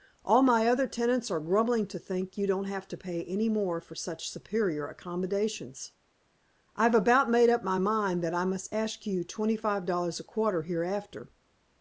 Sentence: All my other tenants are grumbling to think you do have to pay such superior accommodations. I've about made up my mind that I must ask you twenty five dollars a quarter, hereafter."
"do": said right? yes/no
no